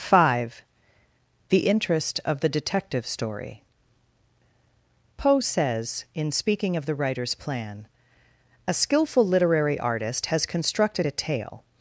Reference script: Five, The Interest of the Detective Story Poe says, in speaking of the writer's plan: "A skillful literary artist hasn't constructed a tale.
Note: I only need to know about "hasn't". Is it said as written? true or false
false